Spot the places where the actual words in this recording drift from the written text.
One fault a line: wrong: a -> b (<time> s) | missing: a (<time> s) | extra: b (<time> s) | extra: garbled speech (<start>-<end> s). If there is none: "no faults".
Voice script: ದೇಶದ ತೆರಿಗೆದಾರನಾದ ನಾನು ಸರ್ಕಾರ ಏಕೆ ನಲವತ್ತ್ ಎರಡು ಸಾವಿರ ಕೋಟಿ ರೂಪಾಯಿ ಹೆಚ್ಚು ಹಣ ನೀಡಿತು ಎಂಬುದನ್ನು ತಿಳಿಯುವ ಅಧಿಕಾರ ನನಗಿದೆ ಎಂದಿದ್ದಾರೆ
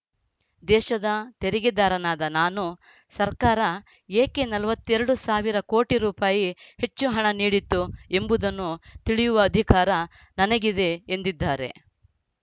no faults